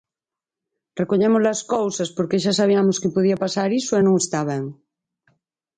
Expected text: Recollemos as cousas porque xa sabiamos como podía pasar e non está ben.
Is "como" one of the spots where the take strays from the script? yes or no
yes